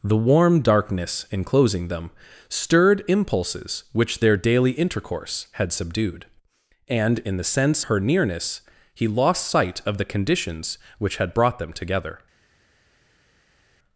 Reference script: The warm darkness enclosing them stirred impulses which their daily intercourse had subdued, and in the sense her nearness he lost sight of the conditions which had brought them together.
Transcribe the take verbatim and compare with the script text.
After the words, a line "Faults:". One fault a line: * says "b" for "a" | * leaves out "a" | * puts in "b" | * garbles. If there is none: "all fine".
The warm darkness enclosing them stirred impulses which their daily intercourse had subdued, and in the sense her nearness he lost sight of the conditions which had brought them together.
Faults:
all fine